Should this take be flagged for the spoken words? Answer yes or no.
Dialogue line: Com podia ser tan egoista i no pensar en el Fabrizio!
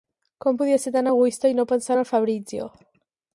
no